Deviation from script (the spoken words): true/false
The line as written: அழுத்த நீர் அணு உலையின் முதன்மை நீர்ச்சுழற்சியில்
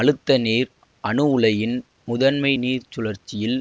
false